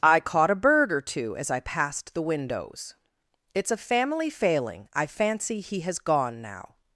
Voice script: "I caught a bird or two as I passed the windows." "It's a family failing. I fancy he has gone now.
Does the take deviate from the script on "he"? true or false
false